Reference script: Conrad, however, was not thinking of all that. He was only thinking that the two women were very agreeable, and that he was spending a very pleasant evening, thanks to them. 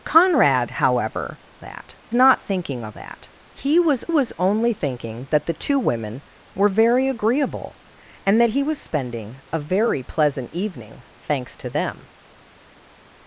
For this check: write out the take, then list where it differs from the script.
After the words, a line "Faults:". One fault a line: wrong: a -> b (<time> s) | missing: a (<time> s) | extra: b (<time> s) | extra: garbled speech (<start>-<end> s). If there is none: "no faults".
Conrad, however, that not thinking of that. He was was only thinking that the two women were very agreeable, and that he was spending a very pleasant evening, thanks to them.
Faults:
wrong: was -> that (1.6 s)
missing: all (3.0 s)
extra: was (4.1 s)